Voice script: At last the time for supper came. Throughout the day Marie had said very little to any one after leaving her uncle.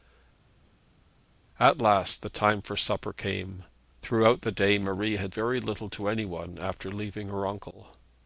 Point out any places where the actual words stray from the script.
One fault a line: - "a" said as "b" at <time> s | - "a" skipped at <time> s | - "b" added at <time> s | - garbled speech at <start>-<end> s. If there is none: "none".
- "said" skipped at 5.3 s